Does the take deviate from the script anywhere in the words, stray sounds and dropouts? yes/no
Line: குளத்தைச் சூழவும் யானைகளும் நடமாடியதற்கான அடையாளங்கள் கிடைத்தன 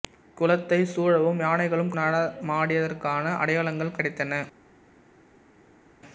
no